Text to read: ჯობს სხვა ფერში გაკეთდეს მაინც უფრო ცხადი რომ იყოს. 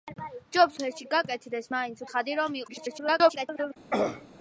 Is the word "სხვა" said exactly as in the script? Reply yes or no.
no